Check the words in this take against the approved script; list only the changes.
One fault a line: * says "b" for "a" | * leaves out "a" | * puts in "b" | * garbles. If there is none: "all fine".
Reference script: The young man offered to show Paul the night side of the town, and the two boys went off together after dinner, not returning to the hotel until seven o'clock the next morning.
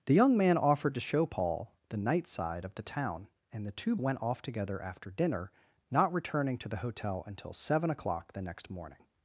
* leaves out "boys"